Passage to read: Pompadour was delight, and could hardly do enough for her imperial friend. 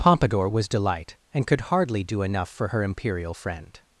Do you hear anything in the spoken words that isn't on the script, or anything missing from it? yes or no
no